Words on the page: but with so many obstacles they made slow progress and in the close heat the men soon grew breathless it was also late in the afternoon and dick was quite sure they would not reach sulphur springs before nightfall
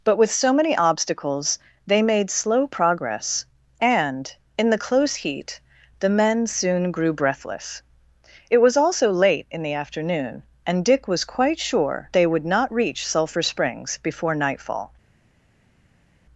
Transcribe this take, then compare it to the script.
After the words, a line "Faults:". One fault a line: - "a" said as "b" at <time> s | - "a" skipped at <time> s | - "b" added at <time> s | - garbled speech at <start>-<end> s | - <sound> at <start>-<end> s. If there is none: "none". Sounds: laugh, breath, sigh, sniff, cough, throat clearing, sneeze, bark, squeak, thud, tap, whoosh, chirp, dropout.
but with so many obstacles they made slow progress and in the close heat the men soon grew breathless it was also late in the afternoon and dick was quite sure they would not reach sulphur springs before nightfall
Faults:
none